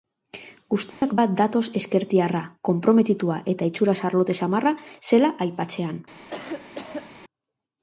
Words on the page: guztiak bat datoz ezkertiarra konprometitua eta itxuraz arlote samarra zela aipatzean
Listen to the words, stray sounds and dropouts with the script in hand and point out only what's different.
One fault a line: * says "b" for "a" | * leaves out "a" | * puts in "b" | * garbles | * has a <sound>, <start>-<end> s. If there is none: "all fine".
* has a dropout, 0.9-1.0 s
* has a cough, 6.3-7.1 s